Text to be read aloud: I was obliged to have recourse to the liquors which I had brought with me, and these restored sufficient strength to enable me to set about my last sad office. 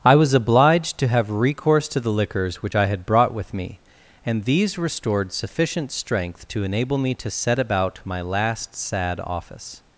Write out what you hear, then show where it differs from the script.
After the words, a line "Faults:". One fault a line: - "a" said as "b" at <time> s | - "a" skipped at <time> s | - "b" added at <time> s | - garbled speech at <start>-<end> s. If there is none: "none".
I was obliged to have recourse to the liquors which I had brought with me, and these restored sufficient strength to enable me to set about my last sad office.
Faults:
none